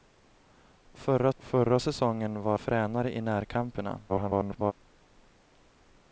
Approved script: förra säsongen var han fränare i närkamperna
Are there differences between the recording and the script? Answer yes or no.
yes